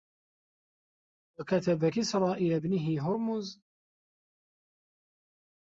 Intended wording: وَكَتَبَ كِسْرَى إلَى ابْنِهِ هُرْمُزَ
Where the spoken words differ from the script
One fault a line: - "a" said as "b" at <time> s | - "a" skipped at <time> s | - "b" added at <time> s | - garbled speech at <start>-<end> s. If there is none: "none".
none